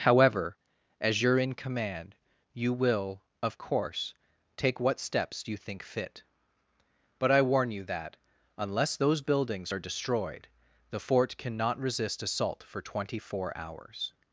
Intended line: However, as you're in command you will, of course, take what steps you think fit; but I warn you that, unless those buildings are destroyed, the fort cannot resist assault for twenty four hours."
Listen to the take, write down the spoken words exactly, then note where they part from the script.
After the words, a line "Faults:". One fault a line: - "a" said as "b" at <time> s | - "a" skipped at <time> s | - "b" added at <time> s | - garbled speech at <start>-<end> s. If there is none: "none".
However, as you're in command you will, of course, take what steps you think fit; but I warn you that, unless those buildings are destroyed, the fort cannot resist assault for twenty four hours."
Faults:
none